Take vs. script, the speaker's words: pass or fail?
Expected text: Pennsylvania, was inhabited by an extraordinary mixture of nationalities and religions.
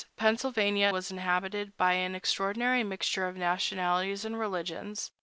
pass